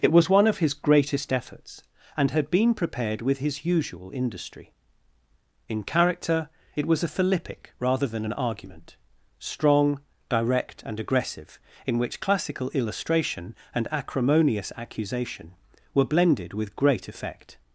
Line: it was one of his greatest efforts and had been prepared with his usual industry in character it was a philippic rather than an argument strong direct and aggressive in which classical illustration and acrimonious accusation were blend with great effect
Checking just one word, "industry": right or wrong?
right